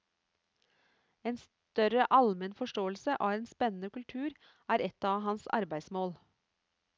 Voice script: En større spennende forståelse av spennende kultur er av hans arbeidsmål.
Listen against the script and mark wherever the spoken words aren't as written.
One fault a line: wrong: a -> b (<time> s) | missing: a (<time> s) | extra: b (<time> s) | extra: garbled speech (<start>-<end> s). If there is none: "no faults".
wrong: spennende -> almen (2.2 s)
extra: en (3.4 s)
extra: et (4.9 s)